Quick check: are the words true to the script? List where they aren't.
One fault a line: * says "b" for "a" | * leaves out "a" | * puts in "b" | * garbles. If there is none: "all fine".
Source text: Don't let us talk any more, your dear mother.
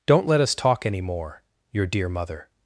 all fine